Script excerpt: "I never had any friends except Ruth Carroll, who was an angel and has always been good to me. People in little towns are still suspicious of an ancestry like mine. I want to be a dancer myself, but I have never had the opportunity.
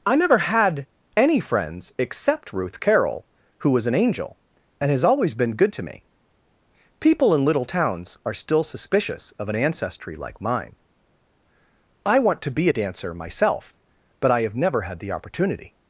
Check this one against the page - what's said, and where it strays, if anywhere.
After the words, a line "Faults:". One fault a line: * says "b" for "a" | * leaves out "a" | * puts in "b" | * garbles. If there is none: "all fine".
"I never had any friends except Ruth Carroll, who was an angel and has always been good to me. People in little towns are still suspicious of an ancestry like mine. I want to be a dancer myself, but I have never had the opportunity.
Faults:
all fine